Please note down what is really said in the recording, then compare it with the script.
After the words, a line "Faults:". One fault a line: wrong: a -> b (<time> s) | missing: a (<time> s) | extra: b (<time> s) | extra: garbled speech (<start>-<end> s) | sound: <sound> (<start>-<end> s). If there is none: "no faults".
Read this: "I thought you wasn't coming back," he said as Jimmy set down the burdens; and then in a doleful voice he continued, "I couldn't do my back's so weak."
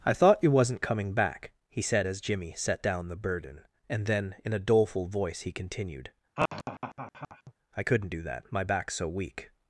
"I thought you wasn't coming back," he said as Jimmy set down the burden; and then in a doleful voice he continued, "I couldn't do that, my back's so weak."
Faults:
wrong: burdens -> burden (3.2 s)
sound: laugh (6.4-7.5 s)
extra: that (8.2 s)